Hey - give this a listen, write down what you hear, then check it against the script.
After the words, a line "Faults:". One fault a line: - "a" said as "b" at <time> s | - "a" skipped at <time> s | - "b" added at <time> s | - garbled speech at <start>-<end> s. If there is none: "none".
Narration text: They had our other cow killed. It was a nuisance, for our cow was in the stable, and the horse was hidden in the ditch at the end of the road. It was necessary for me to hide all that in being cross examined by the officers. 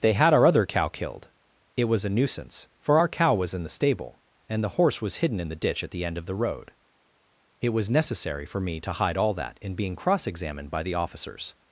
They had our other cow killed. It was a nuisance, for our cow was in the stable, and the horse was hidden in the ditch at the end of the road. It was necessary for me to hide all that in being cross examined by the officers.
Faults:
none